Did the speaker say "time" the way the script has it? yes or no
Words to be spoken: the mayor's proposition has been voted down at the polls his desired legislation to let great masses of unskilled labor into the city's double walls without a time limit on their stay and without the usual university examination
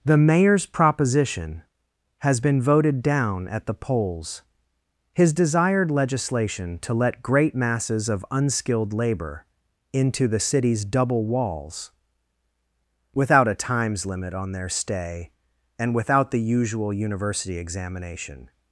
no